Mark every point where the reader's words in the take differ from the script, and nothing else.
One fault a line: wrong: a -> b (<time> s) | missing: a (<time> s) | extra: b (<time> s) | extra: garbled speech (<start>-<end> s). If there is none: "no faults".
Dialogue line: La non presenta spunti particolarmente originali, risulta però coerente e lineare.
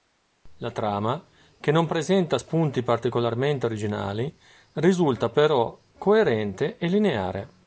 extra: trama che (0.7 s)